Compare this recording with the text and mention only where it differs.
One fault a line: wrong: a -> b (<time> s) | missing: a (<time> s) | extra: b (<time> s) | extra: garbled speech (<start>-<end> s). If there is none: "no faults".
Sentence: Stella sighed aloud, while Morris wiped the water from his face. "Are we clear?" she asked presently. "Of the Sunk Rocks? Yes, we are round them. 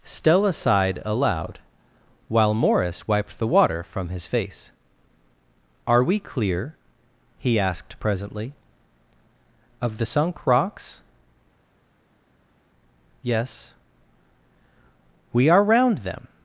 wrong: she -> he (7.4 s)